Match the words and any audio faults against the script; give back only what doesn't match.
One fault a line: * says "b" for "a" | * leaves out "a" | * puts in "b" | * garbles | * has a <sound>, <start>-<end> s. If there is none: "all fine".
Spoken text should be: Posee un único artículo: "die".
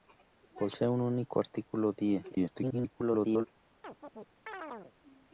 * garbles
* has a chirp, 3.8-4.9 s